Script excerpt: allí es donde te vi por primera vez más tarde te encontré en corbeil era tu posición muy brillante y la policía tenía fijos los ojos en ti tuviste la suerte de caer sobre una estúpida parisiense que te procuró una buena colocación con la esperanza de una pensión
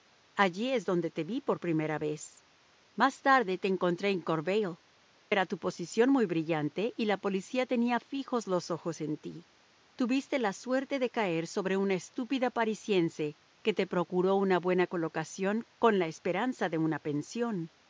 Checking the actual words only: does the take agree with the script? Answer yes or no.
yes